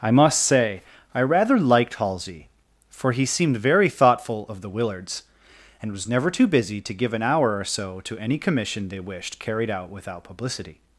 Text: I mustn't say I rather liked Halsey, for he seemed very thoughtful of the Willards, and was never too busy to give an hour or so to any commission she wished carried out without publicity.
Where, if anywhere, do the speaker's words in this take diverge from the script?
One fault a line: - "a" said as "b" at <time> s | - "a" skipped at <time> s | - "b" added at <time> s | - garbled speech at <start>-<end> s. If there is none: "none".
- "mustn't" said as "must" at 0.1 s
- "she" said as "they" at 8.9 s